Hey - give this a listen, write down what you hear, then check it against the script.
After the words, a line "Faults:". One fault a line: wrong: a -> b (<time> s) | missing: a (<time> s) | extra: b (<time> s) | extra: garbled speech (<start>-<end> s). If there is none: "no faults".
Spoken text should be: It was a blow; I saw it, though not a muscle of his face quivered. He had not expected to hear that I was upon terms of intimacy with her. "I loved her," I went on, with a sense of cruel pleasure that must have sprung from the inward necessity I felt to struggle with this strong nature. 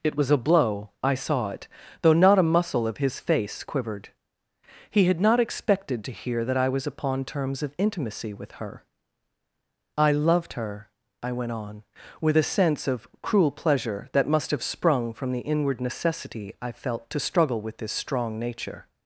It was a blow; I saw it, though not a muscle of his face quivered. He had not expected to hear that I was upon terms of intimacy with her. "I loved her," I went on, with a sense of cruel pleasure that must have sprung from the inward necessity I felt to struggle with this strong nature.
Faults:
no faults